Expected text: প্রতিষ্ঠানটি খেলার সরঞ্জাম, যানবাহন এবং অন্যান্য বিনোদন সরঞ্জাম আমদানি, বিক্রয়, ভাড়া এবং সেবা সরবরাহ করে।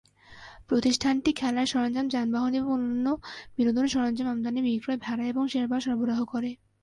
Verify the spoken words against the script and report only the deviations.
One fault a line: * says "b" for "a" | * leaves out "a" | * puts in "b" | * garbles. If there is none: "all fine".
all fine